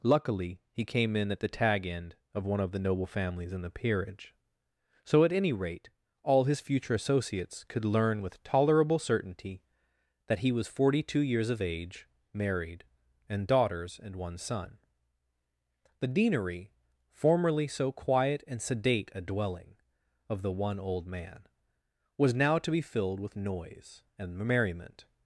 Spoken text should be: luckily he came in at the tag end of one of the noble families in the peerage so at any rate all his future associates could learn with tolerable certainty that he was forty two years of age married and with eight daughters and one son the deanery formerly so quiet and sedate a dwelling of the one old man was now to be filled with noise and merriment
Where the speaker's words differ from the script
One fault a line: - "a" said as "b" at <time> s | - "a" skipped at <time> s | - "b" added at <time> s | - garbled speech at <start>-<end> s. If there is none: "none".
- "with eight" skipped at 13.4 s